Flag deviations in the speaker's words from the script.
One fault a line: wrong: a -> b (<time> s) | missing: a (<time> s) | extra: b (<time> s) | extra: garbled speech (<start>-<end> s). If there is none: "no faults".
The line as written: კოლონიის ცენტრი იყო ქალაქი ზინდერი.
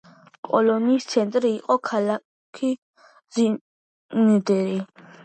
no faults